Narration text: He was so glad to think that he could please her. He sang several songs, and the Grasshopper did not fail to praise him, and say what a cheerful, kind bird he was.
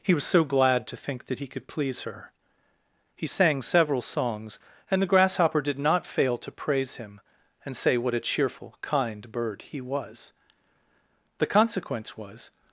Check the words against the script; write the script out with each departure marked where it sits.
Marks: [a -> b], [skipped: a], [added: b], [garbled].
He was so glad to think that he could please her. He sang several songs, and the Grasshopper did not fail to praise him, and say what a cheerful, kind bird he was. [added: The consequence was]